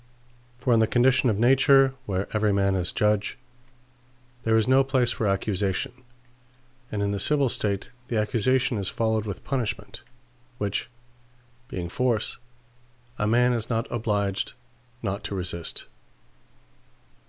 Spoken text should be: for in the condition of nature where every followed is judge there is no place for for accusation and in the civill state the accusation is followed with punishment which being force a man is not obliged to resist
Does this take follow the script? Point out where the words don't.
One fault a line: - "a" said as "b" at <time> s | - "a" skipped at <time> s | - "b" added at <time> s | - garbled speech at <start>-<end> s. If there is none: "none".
- "followed" said as "man" at 2.5 s
- "for" skipped at 5.3 s
- "not" added at 15.0 s